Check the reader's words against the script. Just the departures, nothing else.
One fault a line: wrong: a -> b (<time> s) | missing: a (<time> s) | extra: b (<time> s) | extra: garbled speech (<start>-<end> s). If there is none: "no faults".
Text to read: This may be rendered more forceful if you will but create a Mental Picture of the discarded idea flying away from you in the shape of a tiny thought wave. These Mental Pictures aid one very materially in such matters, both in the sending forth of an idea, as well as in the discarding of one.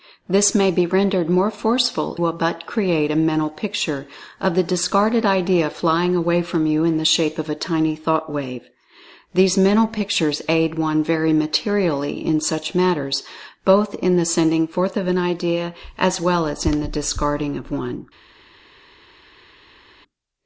missing: if you (2.2 s)